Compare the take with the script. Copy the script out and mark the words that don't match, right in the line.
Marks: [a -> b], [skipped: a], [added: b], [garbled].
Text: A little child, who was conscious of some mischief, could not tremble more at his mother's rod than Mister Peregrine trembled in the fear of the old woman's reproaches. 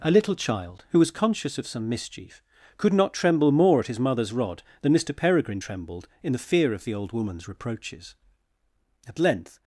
A little child, who was conscious of some mischief, could not tremble more at his mother's rod than Mister Peregrine trembled in the fear of the old woman's reproaches. [added: At length]